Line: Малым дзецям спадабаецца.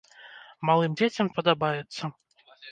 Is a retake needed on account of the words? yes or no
no